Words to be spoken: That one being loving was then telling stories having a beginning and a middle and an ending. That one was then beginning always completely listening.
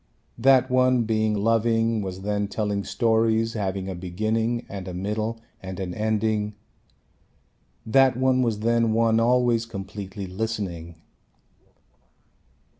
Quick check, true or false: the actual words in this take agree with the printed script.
false